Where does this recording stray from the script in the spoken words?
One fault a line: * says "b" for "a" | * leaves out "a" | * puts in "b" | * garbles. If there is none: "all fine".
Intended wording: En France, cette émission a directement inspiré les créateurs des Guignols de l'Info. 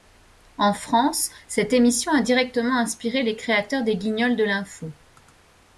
all fine